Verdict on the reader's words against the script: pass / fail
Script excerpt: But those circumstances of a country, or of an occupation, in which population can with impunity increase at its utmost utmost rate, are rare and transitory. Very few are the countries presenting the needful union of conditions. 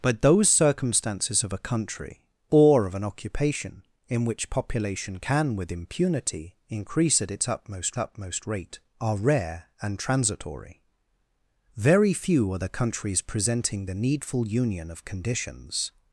pass